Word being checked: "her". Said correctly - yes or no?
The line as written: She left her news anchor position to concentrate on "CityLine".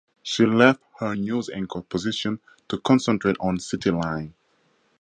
yes